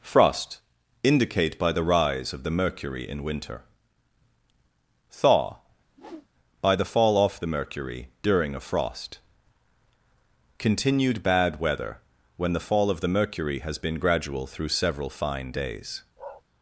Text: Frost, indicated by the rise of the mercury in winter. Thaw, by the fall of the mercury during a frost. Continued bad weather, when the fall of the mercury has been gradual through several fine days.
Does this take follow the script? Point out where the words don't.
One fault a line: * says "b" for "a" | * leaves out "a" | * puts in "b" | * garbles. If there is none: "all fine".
* says "indicate" for "indicated"
* says "off" for "of"